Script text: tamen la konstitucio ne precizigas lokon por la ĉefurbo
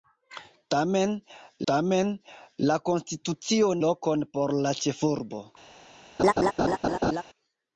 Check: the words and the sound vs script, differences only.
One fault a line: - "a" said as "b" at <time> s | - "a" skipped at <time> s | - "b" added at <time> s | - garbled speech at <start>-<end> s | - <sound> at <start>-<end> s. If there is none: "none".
- "tamen" added at 1.7 s
- "ne precizigas" skipped at 3.7 s
- laugh at 6.2-7.2 s